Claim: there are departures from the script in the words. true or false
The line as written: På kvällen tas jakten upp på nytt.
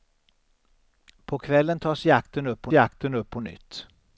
true